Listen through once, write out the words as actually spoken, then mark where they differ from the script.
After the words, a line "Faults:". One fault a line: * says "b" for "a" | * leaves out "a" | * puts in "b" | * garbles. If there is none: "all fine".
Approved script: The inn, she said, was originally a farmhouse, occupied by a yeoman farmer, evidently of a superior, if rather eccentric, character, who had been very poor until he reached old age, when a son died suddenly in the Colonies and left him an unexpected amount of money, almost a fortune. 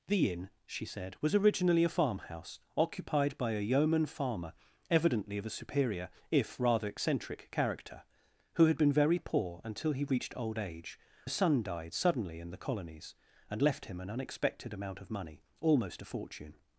The inn, she said, was originally a farmhouse, occupied by a yeoman farmer, evidently of a superior, if rather eccentric, character, who had been very poor until he reached old age, a son died suddenly in the Colonies and left him an unexpected amount of money, almost a fortune.
Faults:
* leaves out "when"